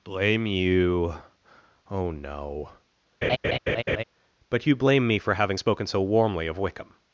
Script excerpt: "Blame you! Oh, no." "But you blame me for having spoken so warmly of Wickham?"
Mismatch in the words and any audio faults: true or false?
true